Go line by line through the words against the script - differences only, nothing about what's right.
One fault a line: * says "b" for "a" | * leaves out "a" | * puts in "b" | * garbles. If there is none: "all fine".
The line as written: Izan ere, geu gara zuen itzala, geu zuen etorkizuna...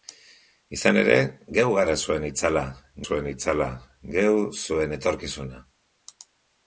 * puts in "zuen itzala"